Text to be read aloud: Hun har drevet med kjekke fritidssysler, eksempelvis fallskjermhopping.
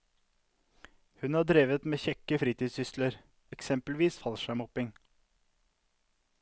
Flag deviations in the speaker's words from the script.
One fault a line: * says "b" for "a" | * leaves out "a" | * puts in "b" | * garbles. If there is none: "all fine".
all fine